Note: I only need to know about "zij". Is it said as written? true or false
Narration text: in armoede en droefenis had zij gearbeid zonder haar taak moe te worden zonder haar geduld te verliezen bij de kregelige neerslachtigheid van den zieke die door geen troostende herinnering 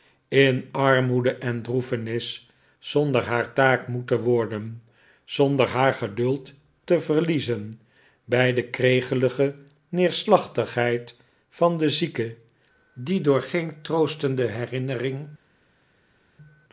false